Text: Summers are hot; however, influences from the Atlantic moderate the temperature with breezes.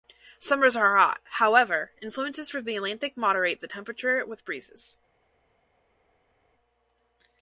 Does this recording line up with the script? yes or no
yes